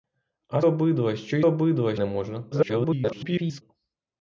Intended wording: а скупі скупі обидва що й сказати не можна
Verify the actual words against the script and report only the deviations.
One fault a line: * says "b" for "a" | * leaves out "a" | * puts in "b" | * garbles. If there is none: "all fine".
* leaves out "скупі скупі"
* says "обидва" for "сказати"
* garbles